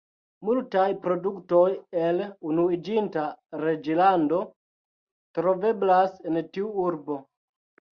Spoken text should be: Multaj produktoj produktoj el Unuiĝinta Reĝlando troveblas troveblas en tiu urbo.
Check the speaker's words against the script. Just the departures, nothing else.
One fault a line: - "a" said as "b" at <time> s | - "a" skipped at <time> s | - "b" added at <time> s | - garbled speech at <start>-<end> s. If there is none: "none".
- "produktoj" skipped at 1.6 s
- "troveblas" skipped at 6.2 s